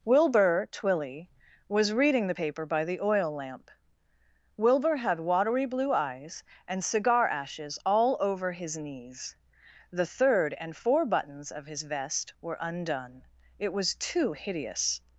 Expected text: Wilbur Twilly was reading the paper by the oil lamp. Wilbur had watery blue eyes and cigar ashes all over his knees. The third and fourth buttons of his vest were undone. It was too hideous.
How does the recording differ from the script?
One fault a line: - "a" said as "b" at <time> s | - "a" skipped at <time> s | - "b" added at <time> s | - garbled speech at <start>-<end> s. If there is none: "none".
- "fourth" said as "four" at 10.7 s